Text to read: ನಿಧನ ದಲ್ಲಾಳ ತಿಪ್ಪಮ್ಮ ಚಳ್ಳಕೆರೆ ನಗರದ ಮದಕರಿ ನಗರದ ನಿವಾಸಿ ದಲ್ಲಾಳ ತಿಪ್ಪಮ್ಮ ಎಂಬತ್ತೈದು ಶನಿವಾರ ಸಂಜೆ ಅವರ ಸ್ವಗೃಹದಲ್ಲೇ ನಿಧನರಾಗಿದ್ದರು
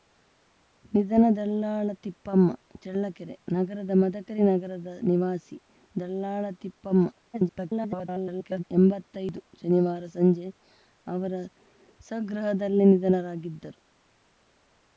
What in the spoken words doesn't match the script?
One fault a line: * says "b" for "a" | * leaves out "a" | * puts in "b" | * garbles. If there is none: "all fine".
* garbles